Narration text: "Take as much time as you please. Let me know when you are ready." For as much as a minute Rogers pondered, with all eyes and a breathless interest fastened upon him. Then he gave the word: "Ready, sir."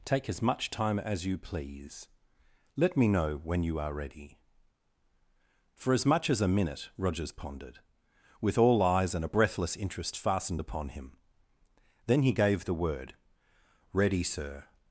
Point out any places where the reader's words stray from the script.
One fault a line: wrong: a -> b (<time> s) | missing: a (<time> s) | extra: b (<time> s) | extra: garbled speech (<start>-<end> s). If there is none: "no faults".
no faults